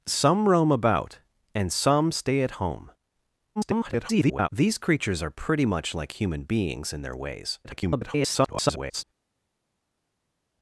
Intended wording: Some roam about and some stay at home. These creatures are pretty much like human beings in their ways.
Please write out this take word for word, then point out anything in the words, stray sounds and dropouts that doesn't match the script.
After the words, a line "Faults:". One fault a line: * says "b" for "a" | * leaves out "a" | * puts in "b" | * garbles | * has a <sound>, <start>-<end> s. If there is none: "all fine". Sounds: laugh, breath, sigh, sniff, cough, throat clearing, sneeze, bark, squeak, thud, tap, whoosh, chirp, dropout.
Some roam about and some stay at home. [garbled] These creatures are pretty much like human beings in their ways. [garbled]
Faults:
* garbles
* garbles